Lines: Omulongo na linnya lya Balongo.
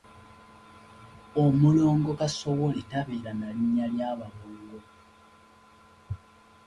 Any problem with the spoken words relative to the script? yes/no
yes